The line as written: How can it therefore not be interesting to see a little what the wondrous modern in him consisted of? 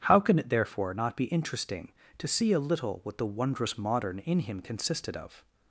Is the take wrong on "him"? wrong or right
right